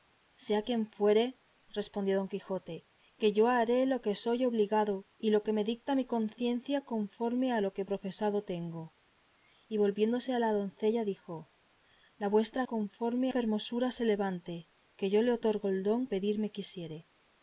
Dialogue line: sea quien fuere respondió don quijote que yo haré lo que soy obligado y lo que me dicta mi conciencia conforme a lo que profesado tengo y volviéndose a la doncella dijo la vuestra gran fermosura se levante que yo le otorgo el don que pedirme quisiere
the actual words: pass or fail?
fail